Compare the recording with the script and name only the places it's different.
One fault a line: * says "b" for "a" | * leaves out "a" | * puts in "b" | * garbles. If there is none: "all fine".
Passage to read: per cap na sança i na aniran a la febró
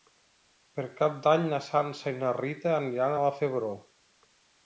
* puts in "d'any"
* puts in "rita"